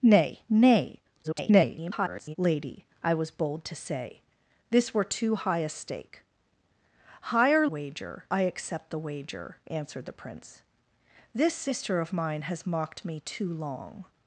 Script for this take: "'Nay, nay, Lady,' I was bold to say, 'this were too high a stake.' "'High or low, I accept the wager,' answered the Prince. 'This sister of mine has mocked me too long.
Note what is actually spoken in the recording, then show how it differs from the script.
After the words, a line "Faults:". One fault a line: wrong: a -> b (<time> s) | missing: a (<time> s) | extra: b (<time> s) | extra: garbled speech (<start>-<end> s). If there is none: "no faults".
"'Nay, nay, [garbled] Lady,' I was bold to say, 'this were too high a stake.' "'High or wager, I accept the wager,' answered the Prince. 'This sister of mine has mocked me too long.
Faults:
extra: garbled speech (1.2-2.4 s)
wrong: low -> wager (7.6 s)